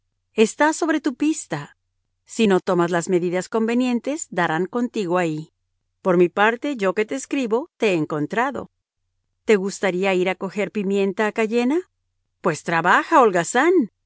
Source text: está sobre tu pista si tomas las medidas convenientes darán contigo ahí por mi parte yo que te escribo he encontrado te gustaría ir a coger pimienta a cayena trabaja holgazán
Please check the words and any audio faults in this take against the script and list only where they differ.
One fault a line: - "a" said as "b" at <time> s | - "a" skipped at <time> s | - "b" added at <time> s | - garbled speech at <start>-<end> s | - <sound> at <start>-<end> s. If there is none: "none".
- "no" added at 2.4 s
- "te" added at 7.8 s
- "pues" added at 12.4 s